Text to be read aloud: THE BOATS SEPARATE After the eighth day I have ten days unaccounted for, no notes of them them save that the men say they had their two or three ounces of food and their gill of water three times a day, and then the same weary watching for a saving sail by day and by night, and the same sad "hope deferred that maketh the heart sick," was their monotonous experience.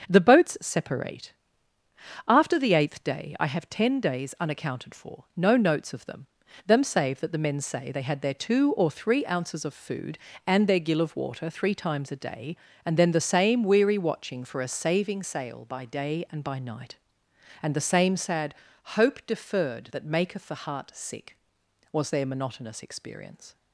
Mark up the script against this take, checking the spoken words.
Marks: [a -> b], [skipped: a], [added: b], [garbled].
THE BOATS SEPARATE After the eighth day I have ten days unaccounted for, no notes of them them save that the men say they had their two or three ounces of food and their gill of water three times a day, and then the same weary watching for a saving sail by day and by night, and the same sad "hope deferred that maketh the heart sick," was their monotonous experience.